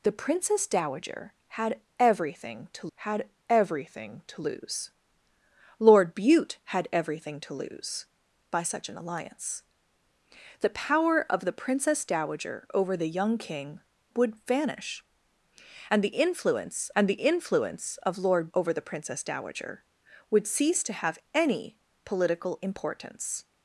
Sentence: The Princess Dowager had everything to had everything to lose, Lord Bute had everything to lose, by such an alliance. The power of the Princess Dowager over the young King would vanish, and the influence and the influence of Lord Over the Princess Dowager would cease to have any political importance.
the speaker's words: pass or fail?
pass